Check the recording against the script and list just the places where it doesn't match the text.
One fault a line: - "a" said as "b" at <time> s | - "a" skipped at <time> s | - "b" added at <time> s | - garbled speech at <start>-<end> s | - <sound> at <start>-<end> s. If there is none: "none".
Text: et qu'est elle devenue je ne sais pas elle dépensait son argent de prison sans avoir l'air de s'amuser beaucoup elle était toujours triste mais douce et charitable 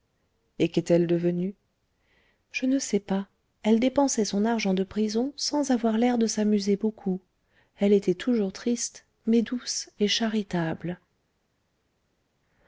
none